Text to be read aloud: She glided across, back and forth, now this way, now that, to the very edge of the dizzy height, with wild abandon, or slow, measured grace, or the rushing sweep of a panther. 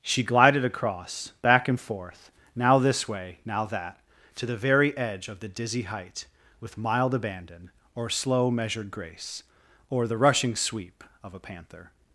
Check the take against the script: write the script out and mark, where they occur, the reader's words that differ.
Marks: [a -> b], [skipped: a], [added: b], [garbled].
She glided across, back and forth, now this way, now that, to the very edge of the dizzy height, with [wild -> mild] abandon, or slow, measured grace, or the rushing sweep of a panther.